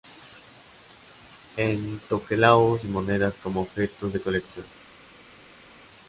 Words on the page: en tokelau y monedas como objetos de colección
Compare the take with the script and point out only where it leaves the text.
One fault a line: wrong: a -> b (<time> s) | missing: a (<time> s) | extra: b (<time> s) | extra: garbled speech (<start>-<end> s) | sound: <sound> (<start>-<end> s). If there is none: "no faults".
no faults